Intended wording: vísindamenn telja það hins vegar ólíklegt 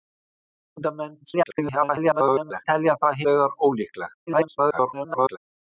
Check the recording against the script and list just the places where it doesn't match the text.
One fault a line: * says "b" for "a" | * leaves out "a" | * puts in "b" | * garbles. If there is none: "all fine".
* garbles
* leaves out "hins"
* garbles